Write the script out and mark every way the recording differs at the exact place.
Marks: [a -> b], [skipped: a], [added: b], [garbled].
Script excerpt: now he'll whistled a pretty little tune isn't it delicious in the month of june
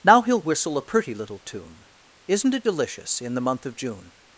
now he'll [whistled -> whistle] a pretty little tune isn't it delicious in the month of june